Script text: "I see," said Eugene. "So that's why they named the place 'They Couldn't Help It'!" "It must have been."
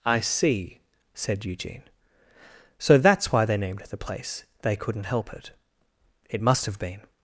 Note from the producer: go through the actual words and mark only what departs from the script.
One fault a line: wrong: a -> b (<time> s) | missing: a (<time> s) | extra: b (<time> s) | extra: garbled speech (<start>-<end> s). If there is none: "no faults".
no faults